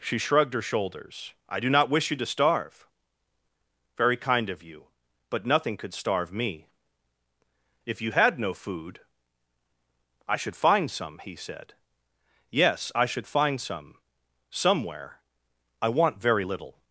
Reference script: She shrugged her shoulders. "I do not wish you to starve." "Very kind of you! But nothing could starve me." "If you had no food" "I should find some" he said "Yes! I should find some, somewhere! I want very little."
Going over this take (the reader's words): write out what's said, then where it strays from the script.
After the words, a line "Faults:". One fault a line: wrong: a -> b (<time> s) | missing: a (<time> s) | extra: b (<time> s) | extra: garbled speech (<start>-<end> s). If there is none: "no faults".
She shrugged her shoulders. "I do not wish you to starve." "Very kind of you! But nothing could starve me." "If you had no food" "I should find some" he said "Yes! I should find some, somewhere! I want very little."
Faults:
no faults